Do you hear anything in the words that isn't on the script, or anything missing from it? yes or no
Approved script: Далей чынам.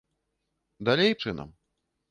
no